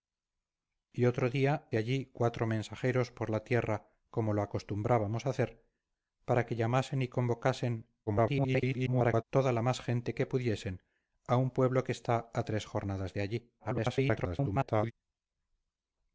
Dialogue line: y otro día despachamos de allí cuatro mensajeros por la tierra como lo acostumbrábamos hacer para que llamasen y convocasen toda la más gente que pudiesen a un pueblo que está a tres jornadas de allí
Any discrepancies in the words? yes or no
yes